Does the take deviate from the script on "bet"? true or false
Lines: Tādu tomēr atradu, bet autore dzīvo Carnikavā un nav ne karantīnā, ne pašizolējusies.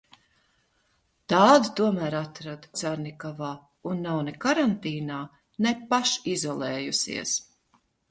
true